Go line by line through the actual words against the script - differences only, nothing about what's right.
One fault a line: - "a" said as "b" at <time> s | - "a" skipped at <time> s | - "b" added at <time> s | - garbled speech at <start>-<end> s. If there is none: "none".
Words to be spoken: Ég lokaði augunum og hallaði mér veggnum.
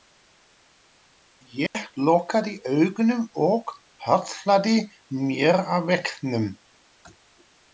- "að" added at 5.8 s